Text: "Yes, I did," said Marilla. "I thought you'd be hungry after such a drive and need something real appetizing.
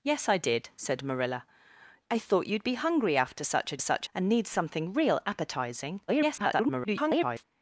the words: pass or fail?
fail